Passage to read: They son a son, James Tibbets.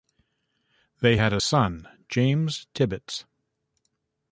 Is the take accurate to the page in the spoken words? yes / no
no